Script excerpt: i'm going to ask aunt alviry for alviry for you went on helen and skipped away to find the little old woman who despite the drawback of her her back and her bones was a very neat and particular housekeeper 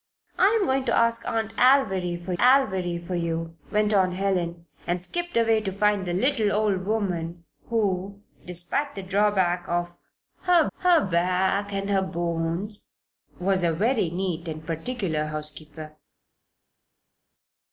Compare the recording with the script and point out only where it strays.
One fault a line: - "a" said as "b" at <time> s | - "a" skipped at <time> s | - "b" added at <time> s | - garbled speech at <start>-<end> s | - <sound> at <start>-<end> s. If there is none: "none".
none